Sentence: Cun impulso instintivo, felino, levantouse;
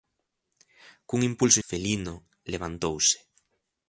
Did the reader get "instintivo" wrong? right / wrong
wrong